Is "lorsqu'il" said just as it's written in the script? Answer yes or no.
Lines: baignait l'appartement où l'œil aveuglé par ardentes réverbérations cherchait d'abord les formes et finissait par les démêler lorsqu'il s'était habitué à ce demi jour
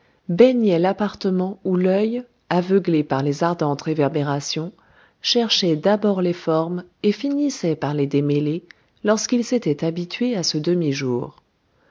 yes